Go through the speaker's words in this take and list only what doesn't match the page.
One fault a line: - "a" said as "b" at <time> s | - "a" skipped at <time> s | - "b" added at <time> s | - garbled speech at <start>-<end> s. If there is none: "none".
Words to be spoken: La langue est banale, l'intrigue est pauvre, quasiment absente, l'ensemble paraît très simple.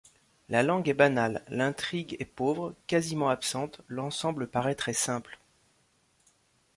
none